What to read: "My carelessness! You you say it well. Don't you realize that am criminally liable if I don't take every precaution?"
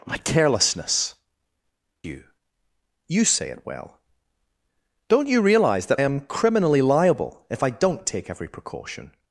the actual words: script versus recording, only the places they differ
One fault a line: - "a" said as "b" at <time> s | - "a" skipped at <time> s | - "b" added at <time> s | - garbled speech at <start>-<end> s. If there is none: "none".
none